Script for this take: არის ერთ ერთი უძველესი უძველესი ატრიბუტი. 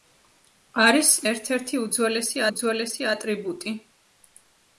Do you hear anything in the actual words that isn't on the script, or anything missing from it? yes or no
no